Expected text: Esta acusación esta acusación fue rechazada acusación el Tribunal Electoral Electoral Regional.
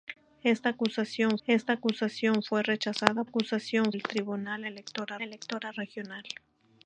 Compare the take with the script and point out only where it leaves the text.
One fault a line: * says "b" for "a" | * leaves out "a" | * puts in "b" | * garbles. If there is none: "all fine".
all fine